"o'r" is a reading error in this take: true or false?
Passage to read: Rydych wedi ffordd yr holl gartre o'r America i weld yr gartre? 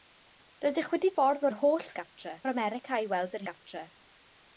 false